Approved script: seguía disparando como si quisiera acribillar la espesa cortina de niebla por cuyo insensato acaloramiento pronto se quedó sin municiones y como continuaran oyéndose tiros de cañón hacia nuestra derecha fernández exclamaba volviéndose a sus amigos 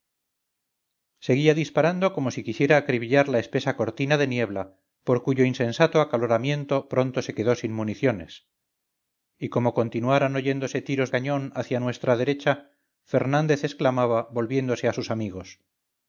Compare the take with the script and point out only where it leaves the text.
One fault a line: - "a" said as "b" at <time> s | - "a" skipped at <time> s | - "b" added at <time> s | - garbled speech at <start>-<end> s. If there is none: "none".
- "de" skipped at 11.1 s